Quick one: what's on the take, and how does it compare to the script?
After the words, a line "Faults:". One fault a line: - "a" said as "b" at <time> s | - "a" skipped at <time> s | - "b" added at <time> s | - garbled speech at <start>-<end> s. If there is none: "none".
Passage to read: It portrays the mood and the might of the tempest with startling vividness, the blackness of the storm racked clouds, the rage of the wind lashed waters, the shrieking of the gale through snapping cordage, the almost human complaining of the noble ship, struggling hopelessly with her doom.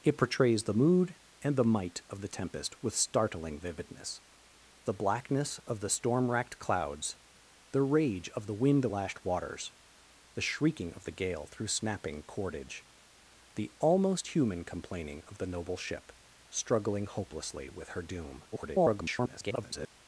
It portrays the mood and the might of the tempest with startling vividness, the blackness of the storm racked clouds, the rage of the wind lashed waters, the shrieking of the gale through snapping cordage, the almost human complaining of the noble ship, struggling hopelessly with her doom. [garbled]
Faults:
- garbled speech at 18.5-19.9 s